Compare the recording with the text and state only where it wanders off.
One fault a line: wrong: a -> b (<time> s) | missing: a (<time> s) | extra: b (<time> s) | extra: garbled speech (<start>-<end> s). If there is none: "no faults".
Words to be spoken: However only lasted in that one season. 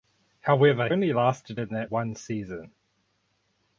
no faults